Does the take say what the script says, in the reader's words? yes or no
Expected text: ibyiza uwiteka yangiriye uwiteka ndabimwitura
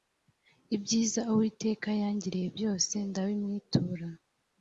no